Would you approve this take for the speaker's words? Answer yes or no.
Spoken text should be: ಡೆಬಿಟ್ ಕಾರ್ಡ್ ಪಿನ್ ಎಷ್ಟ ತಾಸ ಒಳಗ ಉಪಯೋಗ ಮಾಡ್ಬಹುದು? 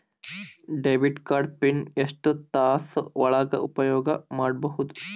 yes